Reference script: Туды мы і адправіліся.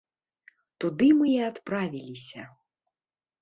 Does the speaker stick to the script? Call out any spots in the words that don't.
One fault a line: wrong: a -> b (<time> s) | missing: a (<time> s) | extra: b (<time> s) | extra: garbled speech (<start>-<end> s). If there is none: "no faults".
no faults